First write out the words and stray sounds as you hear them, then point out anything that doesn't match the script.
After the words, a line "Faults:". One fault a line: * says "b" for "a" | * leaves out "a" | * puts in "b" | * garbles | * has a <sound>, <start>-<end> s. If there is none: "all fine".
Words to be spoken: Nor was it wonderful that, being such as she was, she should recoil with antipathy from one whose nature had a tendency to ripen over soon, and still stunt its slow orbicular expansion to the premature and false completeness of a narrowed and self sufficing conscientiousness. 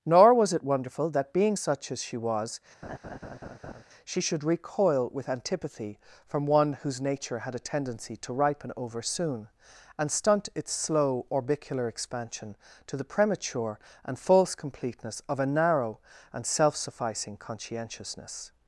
Nor was it wonderful that, being such as she was, she should recoil with antipathy from one whose nature had a tendency to ripen over soon, and stunt its slow orbicular expansion to the premature and false completeness of a narrow and self sufficing conscientiousness.
Faults:
* has a laugh, 2.8-3.8 s
* leaves out "still"
* says "narrow" for "narrowed"